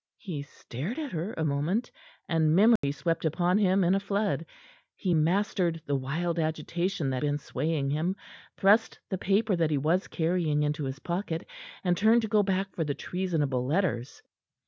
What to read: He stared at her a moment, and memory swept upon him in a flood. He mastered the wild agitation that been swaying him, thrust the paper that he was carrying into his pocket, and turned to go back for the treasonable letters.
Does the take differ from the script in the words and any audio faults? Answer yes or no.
yes